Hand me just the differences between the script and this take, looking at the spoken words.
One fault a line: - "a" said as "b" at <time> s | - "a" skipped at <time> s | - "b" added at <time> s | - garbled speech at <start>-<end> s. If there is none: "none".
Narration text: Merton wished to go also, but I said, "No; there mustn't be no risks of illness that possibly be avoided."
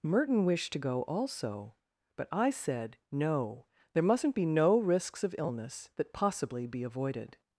none